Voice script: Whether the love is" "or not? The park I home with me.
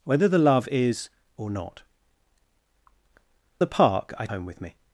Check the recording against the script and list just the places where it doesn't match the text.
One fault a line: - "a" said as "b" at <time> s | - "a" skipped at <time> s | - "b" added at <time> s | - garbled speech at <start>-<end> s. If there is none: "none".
none